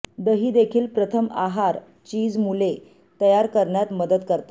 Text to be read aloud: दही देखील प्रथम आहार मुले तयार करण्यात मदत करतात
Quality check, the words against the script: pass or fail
fail